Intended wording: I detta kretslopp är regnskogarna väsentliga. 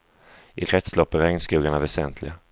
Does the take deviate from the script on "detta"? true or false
true